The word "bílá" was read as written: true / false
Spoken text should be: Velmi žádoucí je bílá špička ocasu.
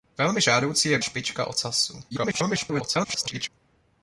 false